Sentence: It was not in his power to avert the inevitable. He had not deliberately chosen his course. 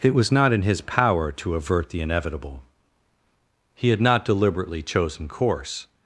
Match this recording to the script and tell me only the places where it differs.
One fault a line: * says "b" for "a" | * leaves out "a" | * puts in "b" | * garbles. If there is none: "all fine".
* leaves out "his"